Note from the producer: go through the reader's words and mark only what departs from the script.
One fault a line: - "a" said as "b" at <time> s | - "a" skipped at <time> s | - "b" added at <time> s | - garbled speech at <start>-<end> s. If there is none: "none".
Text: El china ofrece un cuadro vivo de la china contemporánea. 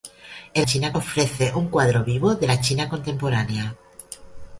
none